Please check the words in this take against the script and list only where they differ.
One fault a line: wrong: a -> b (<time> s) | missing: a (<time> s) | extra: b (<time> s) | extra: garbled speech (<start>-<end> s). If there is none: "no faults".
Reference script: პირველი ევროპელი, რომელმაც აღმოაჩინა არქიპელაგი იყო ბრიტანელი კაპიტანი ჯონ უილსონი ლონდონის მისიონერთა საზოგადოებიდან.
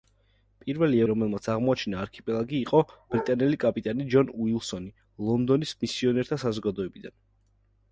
missing: ევროპელი (1.0 s)